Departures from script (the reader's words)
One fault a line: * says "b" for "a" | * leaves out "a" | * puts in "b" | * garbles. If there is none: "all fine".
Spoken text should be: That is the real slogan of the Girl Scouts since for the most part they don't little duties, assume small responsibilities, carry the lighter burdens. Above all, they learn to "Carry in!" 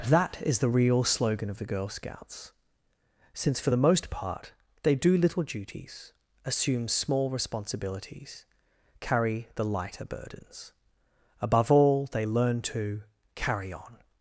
* says "do" for "don't"
* says "on" for "in"